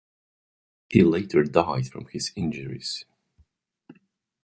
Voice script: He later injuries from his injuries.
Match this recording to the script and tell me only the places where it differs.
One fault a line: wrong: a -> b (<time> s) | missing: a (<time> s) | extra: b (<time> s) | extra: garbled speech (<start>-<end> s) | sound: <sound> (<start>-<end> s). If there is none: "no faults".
wrong: injuries -> died (1.4 s)